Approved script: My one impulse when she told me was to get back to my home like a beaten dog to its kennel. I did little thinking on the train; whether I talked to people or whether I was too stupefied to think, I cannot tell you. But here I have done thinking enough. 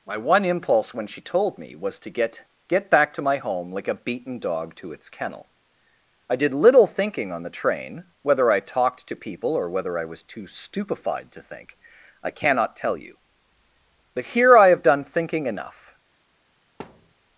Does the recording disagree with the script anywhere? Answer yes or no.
yes